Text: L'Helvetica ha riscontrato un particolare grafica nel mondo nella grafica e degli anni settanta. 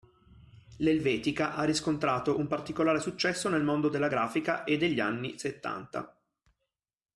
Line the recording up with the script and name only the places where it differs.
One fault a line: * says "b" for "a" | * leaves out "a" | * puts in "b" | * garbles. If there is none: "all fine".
* says "successo" for "grafica"
* says "della" for "nella"